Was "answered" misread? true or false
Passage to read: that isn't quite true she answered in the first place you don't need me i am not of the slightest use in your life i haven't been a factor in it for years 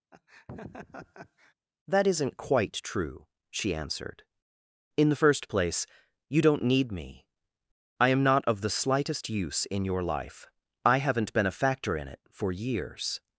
false